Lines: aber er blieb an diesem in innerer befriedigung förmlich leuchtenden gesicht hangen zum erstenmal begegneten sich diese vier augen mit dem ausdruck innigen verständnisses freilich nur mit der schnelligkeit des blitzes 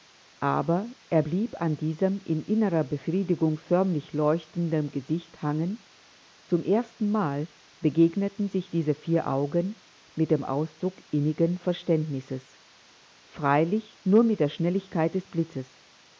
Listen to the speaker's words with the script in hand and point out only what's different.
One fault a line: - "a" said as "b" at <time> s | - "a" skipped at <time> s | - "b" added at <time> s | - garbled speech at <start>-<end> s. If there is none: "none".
none